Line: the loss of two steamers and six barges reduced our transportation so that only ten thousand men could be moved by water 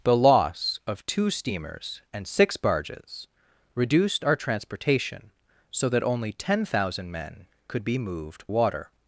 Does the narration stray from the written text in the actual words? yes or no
yes